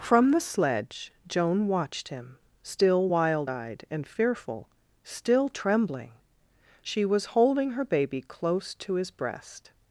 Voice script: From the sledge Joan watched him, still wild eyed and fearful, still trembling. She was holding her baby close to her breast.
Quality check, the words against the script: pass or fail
fail